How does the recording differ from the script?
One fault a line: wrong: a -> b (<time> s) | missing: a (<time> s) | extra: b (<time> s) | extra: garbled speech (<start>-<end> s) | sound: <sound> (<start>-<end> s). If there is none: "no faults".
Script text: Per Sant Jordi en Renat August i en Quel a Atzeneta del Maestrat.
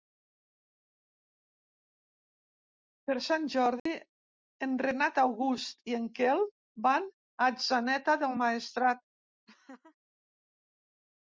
sound: dropout (3.8-3.9 s)
extra: van (6.9 s)
sound: laugh (9.5-10.0 s)